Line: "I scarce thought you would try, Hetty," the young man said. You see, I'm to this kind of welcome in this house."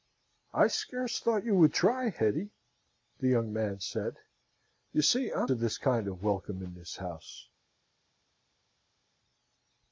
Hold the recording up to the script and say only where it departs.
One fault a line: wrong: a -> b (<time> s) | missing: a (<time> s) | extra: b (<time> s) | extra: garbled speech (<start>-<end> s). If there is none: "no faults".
no faults